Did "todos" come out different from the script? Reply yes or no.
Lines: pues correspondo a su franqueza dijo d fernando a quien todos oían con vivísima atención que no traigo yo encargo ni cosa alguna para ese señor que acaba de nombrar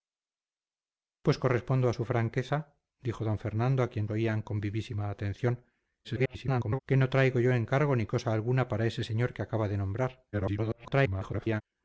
yes